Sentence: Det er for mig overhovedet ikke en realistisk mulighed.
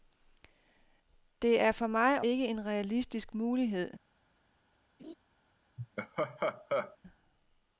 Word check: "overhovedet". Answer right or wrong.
wrong